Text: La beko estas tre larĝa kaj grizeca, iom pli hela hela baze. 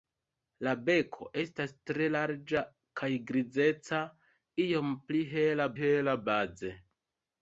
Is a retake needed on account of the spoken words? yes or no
no